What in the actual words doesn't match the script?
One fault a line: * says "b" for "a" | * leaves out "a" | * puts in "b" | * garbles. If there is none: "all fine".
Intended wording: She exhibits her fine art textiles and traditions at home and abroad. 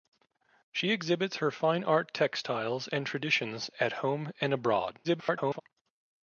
* garbles